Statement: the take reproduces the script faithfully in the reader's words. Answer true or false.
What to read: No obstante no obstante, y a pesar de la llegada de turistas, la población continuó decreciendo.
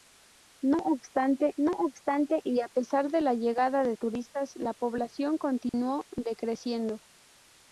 true